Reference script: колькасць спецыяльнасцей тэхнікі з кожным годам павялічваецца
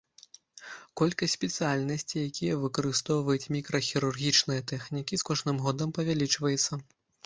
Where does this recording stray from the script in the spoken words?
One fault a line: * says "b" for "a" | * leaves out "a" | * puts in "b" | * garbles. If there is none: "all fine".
* puts in "якія выкарыстоўваюць мікрахірургічныя"